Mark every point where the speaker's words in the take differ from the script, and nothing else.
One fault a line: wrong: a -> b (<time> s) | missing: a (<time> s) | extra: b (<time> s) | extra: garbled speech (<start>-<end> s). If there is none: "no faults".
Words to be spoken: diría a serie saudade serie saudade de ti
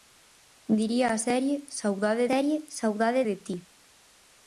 no faults